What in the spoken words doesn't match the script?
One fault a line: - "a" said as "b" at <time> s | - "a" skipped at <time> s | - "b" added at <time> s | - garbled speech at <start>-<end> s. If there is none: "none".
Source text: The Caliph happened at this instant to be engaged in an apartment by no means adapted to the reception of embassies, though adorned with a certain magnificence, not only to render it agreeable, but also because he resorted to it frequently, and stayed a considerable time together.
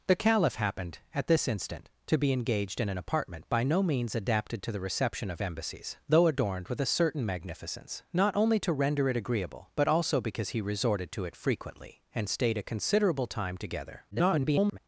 - garbled speech at 14.1-14.8 s